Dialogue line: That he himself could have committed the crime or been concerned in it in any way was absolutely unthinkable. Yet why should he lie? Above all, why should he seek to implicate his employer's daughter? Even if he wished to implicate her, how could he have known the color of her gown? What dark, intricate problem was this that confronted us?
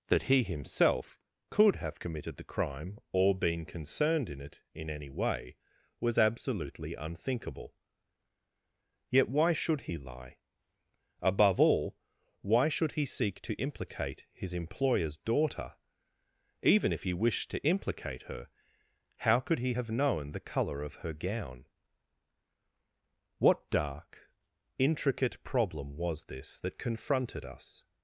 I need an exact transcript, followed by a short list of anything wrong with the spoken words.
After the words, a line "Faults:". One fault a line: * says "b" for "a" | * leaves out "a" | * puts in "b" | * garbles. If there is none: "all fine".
That he himself could have committed the crime or been concerned in it in any way was absolutely unthinkable. Yet why should he lie? Above all, why should he seek to implicate his employer's daughter? Even if he wished to implicate her, how could he have known the color of her gown? What dark, intricate problem was this that confronted us?
Faults:
all fine